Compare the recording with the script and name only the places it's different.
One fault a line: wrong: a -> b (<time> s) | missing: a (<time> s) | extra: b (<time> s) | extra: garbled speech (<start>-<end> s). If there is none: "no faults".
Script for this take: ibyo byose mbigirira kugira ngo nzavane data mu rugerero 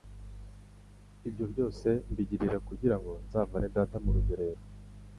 no faults